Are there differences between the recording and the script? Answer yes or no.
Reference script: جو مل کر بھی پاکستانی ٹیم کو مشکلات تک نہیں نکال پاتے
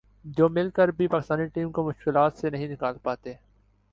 yes